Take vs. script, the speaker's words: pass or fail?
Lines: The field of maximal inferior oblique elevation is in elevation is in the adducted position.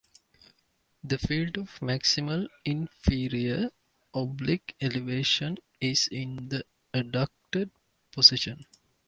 fail